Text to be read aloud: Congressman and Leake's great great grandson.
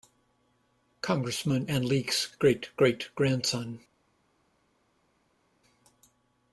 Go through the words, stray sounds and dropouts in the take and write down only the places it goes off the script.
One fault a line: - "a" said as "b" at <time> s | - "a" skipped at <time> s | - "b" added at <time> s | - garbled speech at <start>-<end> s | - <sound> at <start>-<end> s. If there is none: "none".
none